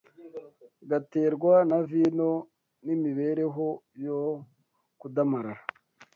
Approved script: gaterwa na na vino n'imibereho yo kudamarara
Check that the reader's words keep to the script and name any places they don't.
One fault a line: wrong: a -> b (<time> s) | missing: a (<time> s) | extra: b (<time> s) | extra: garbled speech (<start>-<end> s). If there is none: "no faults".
missing: na (1.8 s)